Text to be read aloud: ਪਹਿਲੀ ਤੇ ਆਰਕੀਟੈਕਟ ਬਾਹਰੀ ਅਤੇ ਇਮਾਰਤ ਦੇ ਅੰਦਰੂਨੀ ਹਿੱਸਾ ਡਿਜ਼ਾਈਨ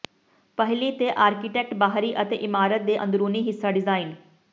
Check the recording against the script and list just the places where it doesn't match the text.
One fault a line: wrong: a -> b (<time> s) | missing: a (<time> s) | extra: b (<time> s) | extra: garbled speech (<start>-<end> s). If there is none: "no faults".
no faults